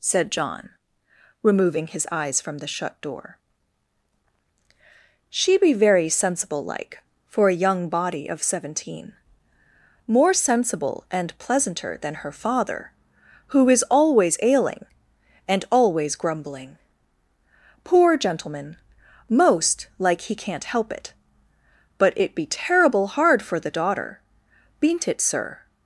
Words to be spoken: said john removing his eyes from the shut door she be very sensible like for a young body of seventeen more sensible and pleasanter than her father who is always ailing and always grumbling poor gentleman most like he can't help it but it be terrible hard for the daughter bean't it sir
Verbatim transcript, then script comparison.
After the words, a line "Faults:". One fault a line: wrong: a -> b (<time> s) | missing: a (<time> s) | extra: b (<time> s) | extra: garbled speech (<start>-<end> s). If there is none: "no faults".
said john removing his eyes from the shut door she be very sensible like for a young body of seventeen more sensible and pleasanter than her father who is always ailing and always grumbling poor gentleman most like he can't help it but it be terrible hard for the daughter bean't it sir
Faults:
no faults